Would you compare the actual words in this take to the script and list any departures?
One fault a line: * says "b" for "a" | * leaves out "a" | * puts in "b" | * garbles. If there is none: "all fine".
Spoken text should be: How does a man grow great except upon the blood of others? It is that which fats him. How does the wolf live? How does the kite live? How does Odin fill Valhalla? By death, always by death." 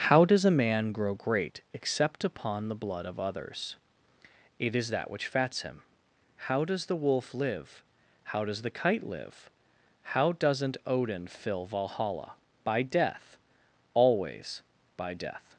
* says "doesn't" for "does"